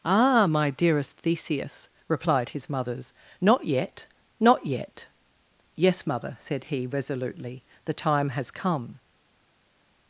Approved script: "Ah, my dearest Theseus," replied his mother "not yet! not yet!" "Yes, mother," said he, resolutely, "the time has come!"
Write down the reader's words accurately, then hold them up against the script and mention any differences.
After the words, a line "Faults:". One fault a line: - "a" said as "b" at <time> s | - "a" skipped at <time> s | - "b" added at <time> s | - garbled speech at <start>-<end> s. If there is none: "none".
"Ah, my dearest Theseus," replied his mothers "not yet! not yet!" "Yes, mother," said he, resolutely, "the time has come!"
Faults:
- "mother" said as "mothers" at 2.7 s